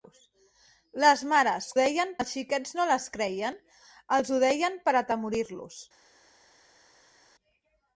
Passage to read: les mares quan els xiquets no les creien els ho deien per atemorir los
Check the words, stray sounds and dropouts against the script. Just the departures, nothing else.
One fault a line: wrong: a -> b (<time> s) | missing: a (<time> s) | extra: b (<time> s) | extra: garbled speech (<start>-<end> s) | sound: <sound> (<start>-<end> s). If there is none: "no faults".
wrong: quan -> deien (1.8 s)